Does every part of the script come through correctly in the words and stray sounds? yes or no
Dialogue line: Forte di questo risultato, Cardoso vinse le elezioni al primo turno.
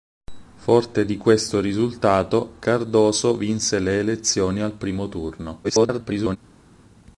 no